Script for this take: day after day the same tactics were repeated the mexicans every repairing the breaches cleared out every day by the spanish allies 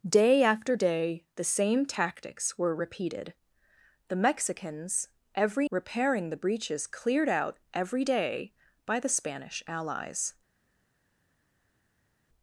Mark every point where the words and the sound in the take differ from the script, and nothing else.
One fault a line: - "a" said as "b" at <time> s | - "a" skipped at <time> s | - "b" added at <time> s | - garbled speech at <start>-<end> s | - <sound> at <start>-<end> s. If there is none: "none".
none